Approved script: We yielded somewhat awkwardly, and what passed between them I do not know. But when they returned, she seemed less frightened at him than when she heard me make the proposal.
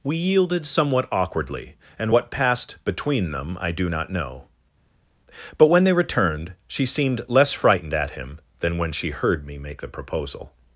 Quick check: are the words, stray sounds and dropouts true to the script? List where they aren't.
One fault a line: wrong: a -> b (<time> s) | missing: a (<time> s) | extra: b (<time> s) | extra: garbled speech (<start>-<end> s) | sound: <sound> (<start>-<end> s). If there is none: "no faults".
no faults